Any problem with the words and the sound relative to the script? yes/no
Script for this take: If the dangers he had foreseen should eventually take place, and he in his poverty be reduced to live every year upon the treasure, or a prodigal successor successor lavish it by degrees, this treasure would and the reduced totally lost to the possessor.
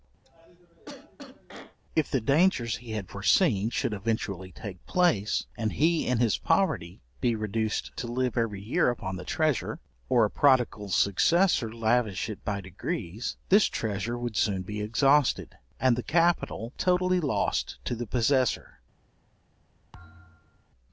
yes